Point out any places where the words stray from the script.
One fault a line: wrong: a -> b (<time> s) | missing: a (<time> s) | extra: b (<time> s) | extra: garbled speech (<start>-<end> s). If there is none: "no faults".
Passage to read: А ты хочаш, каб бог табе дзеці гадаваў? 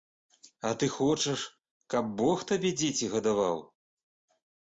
no faults